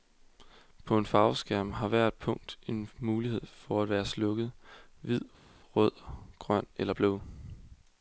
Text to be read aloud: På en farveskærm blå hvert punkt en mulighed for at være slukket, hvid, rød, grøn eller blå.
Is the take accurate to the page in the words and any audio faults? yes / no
no